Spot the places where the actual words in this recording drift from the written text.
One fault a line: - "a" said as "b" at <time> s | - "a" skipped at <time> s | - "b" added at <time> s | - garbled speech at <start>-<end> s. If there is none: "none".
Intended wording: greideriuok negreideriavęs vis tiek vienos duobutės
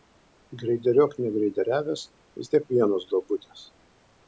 none